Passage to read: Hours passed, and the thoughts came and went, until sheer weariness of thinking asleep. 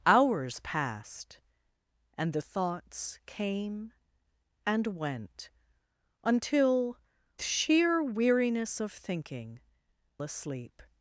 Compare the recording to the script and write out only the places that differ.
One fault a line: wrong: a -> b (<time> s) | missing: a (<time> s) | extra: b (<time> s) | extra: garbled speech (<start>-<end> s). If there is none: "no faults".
no faults